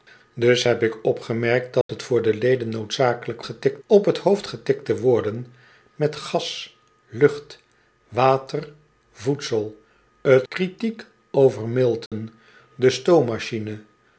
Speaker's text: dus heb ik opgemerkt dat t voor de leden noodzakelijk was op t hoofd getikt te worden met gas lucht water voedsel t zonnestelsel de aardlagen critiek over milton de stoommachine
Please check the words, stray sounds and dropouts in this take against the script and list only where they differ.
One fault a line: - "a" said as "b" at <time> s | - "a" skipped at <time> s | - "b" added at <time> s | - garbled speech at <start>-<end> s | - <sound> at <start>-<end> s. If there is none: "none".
- dropout at 1.8-1.9 s
- "was" said as "getikt" at 3.4 s
- "zonnestelsel de aardlagen" skipped at 10.5 s
- dropout at 12.1-12.1 s